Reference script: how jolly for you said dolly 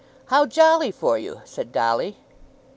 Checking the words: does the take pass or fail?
pass